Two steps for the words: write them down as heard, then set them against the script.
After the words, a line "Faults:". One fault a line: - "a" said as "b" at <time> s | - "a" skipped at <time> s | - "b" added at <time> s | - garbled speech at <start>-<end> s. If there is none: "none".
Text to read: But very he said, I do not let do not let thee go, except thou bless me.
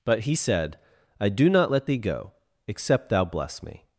But he said, I do not let thee go, except thou bless me.
Faults:
- "very" skipped at 0.2 s
- "do not let" skipped at 1.9 s